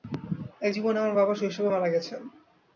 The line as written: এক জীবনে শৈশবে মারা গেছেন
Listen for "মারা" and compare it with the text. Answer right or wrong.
right